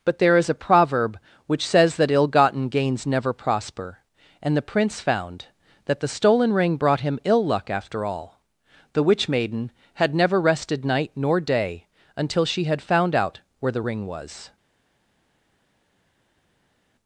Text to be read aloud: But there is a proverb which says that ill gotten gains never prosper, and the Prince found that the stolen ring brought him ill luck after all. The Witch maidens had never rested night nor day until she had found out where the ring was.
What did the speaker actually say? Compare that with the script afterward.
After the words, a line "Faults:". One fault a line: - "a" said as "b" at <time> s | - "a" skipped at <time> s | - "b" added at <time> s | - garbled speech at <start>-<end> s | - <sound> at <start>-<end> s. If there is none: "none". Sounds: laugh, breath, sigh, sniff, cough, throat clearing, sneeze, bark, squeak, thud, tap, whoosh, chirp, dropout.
But there is a proverb which says that ill gotten gains never prosper, and the Prince found that the stolen ring brought him ill luck after all. The Witch maiden had never rested night nor day until she had found out where the ring was.
Faults:
- "maidens" said as "maiden" at 9.3 s